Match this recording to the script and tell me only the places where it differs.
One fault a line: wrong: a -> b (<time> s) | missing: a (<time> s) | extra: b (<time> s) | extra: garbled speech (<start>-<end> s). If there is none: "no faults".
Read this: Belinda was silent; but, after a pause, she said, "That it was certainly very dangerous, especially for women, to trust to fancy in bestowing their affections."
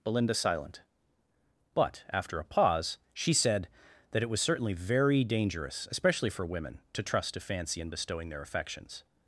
missing: was (0.3 s)